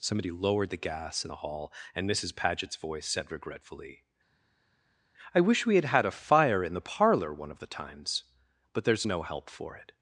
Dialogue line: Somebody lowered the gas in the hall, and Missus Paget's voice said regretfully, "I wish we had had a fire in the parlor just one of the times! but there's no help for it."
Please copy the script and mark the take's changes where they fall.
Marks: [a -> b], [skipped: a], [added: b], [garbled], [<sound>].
Somebody lowered the gas in the hall, and Missus Paget's voice said regretfully, "I wish we had had a fire in the parlor [skipped: just] one of the times! but there's no help for it."